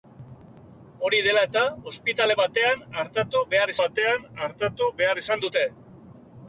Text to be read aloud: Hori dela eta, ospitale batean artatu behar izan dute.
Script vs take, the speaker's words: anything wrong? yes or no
yes